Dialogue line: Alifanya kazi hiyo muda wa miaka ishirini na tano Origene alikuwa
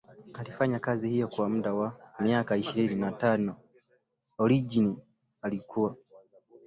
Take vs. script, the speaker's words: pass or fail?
fail